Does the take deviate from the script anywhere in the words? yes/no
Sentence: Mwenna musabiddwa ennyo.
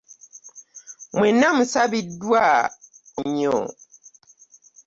no